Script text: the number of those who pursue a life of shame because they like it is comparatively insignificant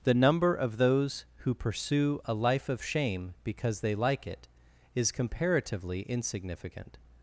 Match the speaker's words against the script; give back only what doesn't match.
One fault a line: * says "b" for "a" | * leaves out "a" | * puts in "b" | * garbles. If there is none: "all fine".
all fine